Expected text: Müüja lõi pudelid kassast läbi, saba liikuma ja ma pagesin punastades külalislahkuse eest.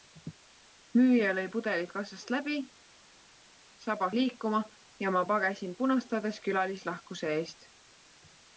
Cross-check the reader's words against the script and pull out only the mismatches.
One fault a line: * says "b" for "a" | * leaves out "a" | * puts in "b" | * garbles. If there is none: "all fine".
all fine